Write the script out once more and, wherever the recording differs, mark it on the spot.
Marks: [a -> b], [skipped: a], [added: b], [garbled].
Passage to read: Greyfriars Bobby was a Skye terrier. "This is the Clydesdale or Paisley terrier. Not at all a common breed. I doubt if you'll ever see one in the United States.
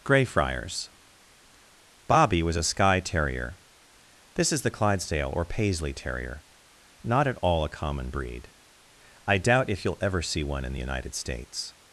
Greyfriars Bobby was a Skye terrier. "This is the Clydesdale or Paisley terrier. Not at all a common breed. I doubt if you'll ever see one in the United States.